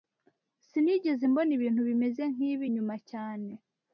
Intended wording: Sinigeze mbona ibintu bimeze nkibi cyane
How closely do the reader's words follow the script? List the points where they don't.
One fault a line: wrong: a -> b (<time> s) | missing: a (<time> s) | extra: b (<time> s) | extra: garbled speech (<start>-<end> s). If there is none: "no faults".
extra: nyuma (2.7 s)